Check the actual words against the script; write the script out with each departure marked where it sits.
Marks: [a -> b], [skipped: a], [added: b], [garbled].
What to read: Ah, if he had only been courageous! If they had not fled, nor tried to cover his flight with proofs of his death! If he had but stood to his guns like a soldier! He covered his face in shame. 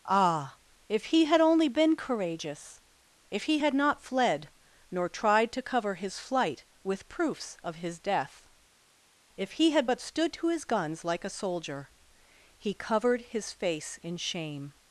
Ah, if he had only been courageous! If [they -> he] had not fled, nor tried to cover his flight with proofs of his death! If he had but stood to his guns like a soldier! He covered his face in shame.